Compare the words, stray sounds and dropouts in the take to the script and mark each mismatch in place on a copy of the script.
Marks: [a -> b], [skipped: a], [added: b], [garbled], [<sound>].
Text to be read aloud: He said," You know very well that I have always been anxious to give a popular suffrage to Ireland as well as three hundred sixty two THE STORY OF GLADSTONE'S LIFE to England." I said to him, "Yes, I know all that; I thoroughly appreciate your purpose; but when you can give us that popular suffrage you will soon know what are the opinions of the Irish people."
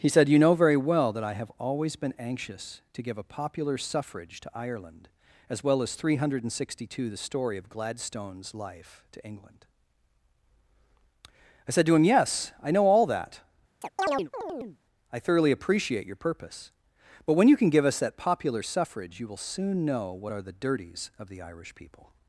He said," You know very well that I have always been anxious to give a popular suffrage to Ireland as well as three hundred sixty two THE STORY OF GLADSTONE'S LIFE to England." I said to him, "Yes, I know all that; [chirp] I thoroughly appreciate your purpose; but when you can give us that popular suffrage you will soon know what are the [opinions -> dirties] of the Irish people."